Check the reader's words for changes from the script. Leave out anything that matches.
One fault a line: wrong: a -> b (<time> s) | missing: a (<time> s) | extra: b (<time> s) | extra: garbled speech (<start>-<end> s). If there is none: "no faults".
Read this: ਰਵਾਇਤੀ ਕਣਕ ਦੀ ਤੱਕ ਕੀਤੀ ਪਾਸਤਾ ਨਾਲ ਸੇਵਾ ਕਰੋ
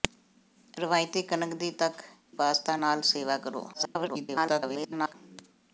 missing: ਕੀਤੀ (2.0 s)
extra: garbled speech (3.7-5.1 s)